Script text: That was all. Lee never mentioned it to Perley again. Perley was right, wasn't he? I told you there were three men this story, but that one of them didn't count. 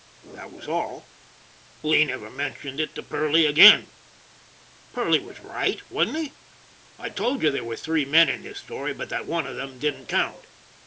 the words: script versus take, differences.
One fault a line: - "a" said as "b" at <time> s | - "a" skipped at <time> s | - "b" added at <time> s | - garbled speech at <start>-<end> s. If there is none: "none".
- "in" added at 8.3 s